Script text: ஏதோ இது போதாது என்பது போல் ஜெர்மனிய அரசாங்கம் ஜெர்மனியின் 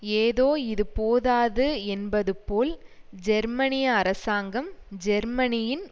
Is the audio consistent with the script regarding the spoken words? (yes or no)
yes